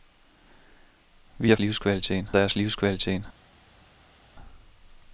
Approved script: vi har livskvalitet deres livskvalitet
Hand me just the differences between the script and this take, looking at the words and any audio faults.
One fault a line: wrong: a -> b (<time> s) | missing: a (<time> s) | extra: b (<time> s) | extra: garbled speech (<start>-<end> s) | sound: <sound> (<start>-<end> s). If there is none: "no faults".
no faults